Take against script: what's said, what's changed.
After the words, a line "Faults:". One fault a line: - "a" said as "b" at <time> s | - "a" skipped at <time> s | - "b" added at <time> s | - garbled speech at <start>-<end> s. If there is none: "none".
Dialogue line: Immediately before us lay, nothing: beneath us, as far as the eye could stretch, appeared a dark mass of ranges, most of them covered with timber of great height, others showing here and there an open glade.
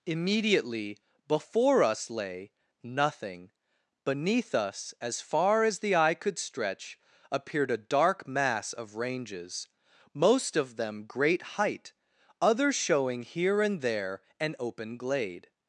Immediately before us lay, nothing: beneath us, as far as the eye could stretch, appeared a dark mass of ranges, most of them great height, others showing here and there an open glade.
Faults:
- "covered with timber of" skipped at 11.0 s